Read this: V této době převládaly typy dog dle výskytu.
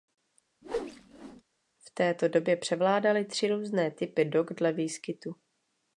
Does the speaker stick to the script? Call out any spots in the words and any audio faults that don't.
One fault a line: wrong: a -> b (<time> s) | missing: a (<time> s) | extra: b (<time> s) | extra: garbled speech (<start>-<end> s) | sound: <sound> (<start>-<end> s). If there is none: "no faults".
sound: whoosh (0.6-1.4 s)
extra: tři různé (3.2 s)